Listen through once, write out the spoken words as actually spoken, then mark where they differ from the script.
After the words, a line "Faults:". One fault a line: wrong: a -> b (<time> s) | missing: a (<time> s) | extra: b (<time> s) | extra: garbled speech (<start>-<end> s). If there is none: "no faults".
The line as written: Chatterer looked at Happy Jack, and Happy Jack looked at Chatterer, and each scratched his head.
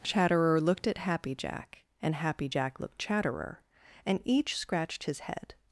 Chatterer looked at Happy Jack, and Happy Jack looked Chatterer, and each scratched his head.
Faults:
missing: at (3.0 s)